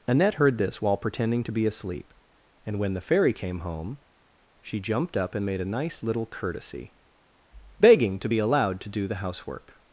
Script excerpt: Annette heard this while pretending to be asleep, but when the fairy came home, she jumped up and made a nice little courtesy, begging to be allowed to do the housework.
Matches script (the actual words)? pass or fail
fail